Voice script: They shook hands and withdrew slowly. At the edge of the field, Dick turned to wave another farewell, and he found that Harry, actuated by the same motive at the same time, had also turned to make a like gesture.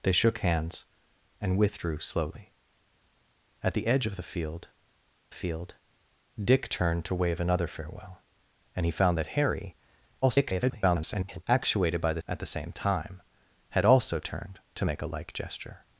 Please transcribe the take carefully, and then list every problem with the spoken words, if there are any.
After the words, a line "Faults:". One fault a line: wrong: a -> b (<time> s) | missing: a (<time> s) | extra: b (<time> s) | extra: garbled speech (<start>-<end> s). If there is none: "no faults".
They shook hands and withdrew slowly. At the edge of the field field, Dick turned to wave another farewell, and he found that Harry, [garbled] actuated by the at the same time, had also turned to make a like gesture.
Faults:
extra: field (5.3 s)
extra: garbled speech (10.2-11.4 s)
missing: same motive (12.2 s)